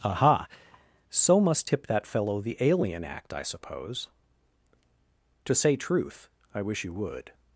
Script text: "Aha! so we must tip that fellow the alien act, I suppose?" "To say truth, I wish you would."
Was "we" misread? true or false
true